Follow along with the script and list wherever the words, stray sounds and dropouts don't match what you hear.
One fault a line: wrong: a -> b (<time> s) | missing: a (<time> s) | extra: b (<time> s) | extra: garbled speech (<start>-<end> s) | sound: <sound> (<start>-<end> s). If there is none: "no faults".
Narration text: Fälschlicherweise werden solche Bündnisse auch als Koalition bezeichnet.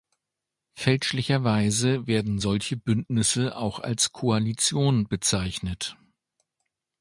no faults